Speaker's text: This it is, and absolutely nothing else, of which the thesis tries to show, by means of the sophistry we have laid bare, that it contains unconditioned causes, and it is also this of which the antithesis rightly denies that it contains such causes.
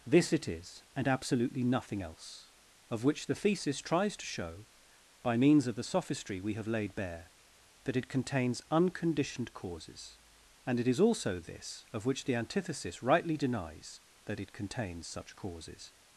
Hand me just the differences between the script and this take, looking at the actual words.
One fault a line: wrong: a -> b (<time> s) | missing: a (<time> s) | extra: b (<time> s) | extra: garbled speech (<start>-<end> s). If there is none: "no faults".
no faults